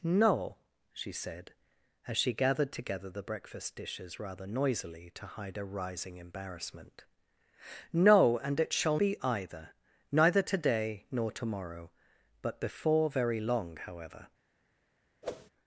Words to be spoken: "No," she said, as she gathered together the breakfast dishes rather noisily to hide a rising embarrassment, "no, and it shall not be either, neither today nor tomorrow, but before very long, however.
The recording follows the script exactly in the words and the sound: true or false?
false